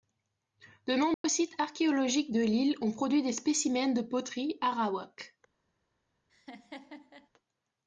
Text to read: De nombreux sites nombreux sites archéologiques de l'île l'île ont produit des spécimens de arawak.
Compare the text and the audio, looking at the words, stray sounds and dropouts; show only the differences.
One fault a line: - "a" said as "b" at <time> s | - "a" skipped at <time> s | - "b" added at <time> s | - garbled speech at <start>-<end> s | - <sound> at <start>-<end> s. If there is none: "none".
- dropout at 1.1-1.2 s
- "nombreux sites" skipped at 1.6 s
- "l'île" skipped at 2.8 s
- "poterie" added at 4.0 s
- laugh at 6.3-7.3 s